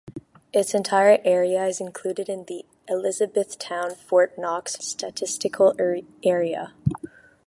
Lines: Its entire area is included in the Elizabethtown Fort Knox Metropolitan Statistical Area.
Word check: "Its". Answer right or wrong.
right